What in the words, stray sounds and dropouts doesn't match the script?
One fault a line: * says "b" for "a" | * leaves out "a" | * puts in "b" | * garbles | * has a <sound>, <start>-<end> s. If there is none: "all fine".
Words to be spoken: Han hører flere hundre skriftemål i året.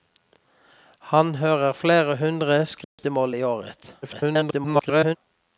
* has a dropout, 2.8-3.0 s
* garbles